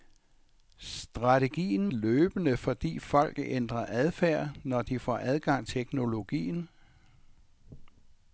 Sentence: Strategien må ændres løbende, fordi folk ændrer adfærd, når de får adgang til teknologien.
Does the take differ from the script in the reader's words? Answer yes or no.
yes